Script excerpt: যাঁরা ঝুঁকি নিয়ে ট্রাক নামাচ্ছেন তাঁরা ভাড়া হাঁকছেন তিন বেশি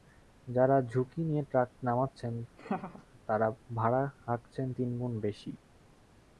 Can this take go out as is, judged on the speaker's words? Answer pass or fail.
fail